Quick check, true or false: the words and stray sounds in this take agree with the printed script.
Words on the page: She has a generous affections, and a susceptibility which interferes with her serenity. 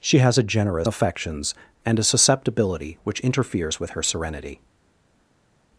true